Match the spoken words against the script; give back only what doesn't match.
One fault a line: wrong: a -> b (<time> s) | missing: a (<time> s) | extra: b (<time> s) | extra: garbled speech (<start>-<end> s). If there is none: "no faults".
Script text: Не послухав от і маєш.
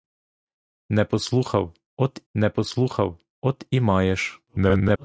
extra: не послухав от (2.3 s)
extra: garbled speech (4.5-5.0 s)